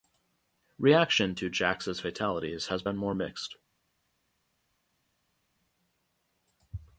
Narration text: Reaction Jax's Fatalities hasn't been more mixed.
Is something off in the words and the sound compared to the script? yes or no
yes